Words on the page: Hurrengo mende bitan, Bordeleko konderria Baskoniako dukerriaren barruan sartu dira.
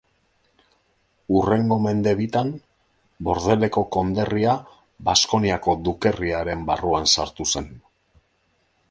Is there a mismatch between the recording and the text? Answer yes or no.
yes